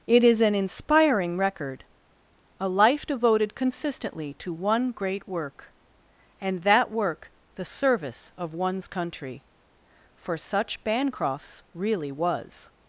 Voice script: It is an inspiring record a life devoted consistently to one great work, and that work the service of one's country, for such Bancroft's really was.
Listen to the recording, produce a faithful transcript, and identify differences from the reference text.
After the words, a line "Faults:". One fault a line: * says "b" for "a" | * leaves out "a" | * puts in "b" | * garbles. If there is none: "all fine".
It is an inspiring record a life devoted consistently to one great work, and that work the service of one's country, for such Bancroft's really was.
Faults:
all fine